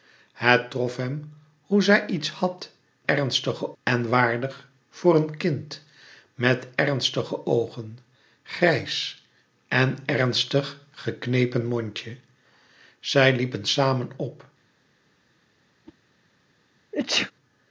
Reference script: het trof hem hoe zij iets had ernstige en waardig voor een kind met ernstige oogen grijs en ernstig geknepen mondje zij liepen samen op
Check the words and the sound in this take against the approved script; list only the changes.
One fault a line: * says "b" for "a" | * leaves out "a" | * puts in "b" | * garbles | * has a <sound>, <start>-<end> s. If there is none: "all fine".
* has a whoosh, 15.8-16.0 s
* has a sneeze, 16.9-17.3 s